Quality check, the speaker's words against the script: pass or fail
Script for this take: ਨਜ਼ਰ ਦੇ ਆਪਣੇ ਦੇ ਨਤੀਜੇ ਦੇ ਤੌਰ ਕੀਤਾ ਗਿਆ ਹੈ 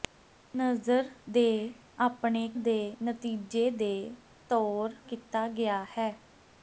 pass